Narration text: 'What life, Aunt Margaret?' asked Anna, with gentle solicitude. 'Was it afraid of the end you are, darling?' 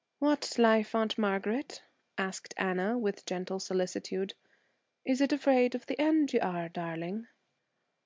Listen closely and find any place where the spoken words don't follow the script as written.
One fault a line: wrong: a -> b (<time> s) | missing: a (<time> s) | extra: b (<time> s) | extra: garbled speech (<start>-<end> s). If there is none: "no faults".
wrong: Was -> Is (5.0 s)